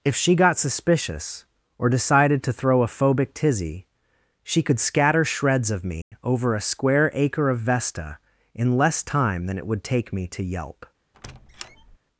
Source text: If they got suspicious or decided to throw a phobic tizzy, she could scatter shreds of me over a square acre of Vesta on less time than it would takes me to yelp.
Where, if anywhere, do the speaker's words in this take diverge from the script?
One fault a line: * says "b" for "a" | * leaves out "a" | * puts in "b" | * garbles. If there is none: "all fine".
* says "she" for "they"
* says "in" for "on"
* says "take" for "takes"